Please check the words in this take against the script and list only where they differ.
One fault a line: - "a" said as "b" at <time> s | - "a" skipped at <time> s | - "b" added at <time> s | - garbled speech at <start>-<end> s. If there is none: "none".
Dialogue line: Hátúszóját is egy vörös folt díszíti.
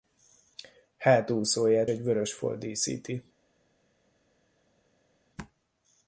- "is" skipped at 1.9 s